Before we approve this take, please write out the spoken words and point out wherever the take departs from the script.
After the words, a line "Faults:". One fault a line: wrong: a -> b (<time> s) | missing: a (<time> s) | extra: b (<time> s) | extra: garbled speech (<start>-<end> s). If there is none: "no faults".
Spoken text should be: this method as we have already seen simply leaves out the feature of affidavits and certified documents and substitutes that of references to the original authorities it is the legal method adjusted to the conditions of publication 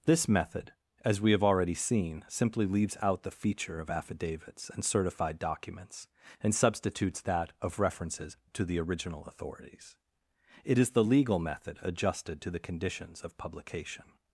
this method as we have already seen simply leaves out the feature of affidavits and certified documents and substitutes that of references to the original authorities it is the legal method adjusted to the conditions of publication
Faults:
no faults